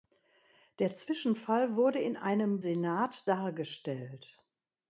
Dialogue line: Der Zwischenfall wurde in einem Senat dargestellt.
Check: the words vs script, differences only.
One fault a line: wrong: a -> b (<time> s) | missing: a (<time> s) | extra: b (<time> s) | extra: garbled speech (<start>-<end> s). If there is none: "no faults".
no faults